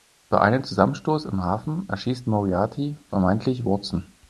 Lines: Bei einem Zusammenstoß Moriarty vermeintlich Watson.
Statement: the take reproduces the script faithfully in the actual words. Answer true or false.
false